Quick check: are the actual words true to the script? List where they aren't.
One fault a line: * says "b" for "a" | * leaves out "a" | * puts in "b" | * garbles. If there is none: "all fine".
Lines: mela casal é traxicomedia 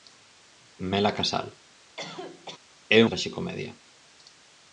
all fine